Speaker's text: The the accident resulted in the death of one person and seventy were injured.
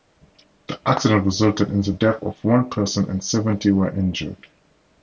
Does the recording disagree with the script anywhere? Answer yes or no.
yes